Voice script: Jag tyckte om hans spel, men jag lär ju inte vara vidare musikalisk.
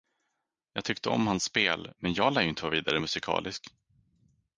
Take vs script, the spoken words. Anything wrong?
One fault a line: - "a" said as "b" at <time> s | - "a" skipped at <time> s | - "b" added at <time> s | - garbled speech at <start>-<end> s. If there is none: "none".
none